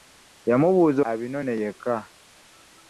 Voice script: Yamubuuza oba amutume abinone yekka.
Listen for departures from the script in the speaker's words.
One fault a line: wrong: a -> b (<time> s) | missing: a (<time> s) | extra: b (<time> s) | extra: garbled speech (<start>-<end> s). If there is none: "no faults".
missing: oba amutume (1.0 s)